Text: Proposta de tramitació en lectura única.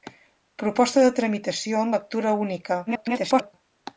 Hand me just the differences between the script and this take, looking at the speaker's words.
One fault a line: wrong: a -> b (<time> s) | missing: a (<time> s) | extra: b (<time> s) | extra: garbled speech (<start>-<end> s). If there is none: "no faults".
extra: garbled speech (2.9-3.5 s)